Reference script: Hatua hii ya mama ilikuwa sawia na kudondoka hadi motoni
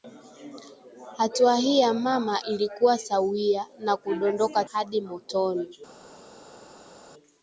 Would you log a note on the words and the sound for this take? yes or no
no